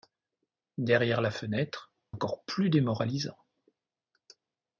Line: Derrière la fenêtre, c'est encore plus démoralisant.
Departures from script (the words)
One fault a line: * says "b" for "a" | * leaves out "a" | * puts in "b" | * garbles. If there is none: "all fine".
* leaves out "c'est"